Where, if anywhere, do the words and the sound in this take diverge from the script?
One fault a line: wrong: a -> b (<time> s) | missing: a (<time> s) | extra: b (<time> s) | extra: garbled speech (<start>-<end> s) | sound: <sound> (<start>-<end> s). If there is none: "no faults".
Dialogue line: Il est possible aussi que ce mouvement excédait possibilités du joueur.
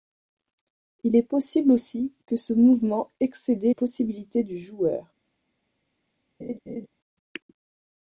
sound: laugh (6.4-6.9 s)